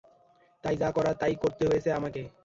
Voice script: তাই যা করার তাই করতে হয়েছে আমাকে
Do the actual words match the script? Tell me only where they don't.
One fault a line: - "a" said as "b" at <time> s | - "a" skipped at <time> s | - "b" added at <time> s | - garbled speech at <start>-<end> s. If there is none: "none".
none